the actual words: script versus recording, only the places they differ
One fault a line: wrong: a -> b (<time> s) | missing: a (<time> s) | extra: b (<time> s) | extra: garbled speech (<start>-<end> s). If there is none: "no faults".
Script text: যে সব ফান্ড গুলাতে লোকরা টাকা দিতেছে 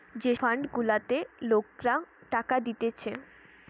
missing: সব (0.3 s)